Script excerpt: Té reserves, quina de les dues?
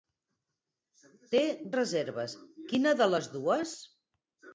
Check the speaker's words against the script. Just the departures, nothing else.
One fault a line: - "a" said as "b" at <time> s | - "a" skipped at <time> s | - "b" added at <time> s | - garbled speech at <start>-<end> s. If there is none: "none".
none